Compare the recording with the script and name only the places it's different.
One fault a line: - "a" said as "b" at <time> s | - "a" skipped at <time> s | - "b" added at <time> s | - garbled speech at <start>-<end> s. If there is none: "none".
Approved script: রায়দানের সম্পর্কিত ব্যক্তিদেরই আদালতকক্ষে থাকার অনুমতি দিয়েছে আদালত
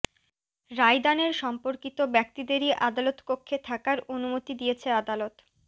none